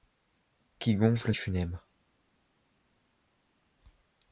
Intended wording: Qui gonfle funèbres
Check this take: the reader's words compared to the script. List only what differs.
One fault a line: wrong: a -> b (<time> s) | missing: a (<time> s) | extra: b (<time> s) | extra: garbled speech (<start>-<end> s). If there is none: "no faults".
no faults